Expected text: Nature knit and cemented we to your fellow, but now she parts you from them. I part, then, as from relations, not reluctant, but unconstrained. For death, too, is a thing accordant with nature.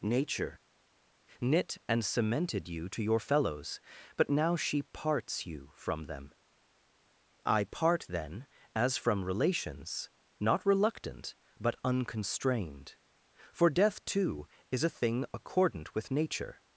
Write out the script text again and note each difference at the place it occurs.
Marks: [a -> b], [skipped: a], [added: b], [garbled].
Nature knit and cemented [we -> you] to your [fellow, -> fellows] but now she parts you from them. I part, then, as from relations, not reluctant, but unconstrained. For death, too, is a thing accordant with nature.